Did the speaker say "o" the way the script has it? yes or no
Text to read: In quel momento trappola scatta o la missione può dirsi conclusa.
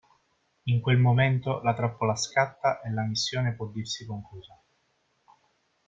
no